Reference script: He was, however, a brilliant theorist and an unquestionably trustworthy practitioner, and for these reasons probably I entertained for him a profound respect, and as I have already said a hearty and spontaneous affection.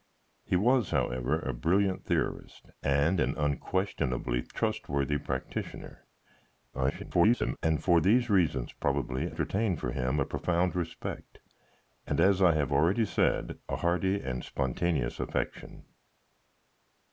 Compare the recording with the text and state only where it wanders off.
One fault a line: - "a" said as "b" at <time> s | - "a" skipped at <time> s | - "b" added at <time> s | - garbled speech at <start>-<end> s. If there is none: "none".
- garbled speech at 6.7-7.6 s
- "I" skipped at 9.3 s